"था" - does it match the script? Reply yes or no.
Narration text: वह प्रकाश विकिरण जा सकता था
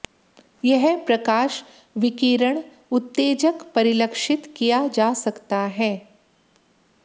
no